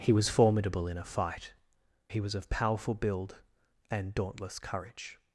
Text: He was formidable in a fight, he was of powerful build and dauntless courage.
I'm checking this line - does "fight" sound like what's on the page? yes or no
yes